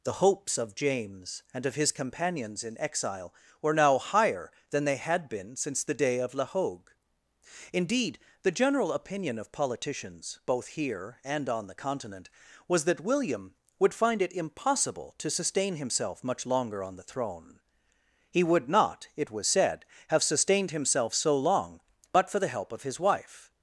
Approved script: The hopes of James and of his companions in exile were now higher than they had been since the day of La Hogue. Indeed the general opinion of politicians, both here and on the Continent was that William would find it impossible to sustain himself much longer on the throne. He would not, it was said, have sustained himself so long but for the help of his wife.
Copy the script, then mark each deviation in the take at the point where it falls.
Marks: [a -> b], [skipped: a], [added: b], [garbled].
The hopes of James and of his companions in exile were now higher than they had been since the day of La Hogue. Indeed the general opinion of politicians, both here and on the Continent was that William would find it impossible to sustain himself much longer on the throne. He would not, it was said, have sustained himself so long but for the help of his wife.